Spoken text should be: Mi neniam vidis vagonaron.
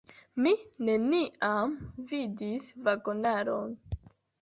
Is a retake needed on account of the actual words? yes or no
no